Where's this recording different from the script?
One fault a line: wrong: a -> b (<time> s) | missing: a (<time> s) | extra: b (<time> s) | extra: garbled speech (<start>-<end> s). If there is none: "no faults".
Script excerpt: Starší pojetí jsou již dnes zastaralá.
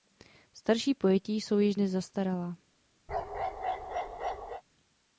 no faults